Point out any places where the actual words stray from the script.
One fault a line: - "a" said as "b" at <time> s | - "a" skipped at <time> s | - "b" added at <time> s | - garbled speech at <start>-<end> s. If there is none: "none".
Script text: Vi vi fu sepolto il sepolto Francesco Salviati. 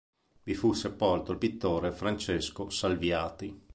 - "vi" skipped at 0.6 s
- "sepolto" said as "pittore" at 1.3 s